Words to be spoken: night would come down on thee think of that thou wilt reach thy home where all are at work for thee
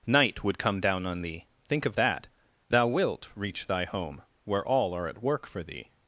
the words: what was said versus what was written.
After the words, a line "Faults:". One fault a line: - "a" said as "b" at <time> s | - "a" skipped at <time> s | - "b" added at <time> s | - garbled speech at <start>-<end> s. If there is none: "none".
night would come down on thee think of that thou wilt reach thy home where all are at work for thee
Faults:
none